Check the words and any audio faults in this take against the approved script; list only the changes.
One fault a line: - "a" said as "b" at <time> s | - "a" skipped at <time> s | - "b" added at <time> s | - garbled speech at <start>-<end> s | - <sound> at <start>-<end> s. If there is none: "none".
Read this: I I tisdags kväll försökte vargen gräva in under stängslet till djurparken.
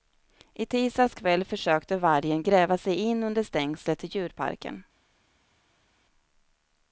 - "I" skipped at 0.7 s
- "sig" added at 2.8 s